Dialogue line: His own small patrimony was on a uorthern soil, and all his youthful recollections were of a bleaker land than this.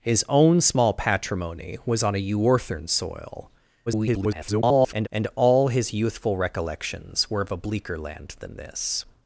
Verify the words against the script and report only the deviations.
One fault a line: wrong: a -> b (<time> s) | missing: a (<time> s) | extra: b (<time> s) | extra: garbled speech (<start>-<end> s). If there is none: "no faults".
extra: garbled speech (3.9-5.1 s)